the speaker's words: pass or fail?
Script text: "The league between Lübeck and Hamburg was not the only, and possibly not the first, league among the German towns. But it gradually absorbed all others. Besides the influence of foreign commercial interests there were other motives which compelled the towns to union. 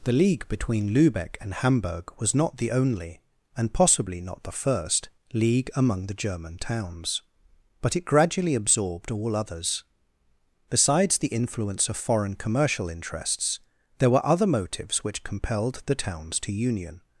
pass